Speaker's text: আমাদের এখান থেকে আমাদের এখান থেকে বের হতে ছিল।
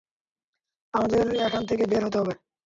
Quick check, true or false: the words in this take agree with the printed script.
false